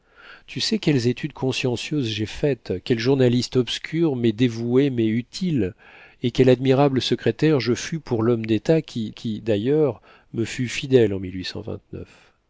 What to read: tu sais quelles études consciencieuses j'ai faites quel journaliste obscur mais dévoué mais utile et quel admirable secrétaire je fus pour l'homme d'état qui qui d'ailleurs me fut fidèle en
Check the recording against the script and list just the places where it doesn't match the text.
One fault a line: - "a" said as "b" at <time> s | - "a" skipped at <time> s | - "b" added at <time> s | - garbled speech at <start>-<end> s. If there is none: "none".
none